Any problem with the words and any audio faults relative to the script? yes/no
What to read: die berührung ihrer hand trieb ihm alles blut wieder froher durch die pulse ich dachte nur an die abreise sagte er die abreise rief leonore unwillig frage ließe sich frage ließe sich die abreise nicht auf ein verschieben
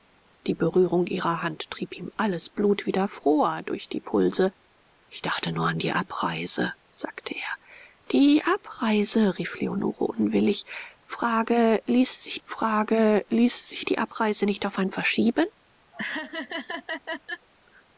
yes